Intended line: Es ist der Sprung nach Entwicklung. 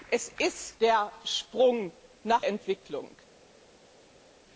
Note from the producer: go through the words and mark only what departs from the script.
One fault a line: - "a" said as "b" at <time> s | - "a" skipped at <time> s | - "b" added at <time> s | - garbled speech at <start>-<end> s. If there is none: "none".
none